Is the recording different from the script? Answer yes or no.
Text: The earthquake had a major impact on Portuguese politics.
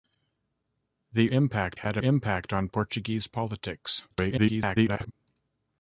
yes